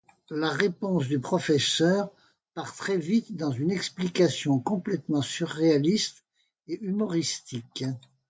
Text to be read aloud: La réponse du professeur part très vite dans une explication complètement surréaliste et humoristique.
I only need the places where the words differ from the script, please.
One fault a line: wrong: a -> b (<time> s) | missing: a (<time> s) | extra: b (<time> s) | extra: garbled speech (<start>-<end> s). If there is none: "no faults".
no faults